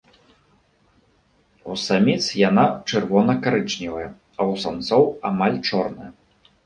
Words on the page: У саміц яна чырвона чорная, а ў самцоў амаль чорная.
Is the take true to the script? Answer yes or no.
no